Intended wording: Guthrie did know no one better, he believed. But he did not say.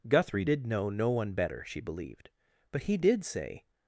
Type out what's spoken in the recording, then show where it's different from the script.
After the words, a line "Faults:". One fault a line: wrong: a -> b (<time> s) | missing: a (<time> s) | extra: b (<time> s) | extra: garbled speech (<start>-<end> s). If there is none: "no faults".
Guthrie did know no one better, she believed. But he did say.
Faults:
wrong: he -> she (1.7 s)
missing: not (3.2 s)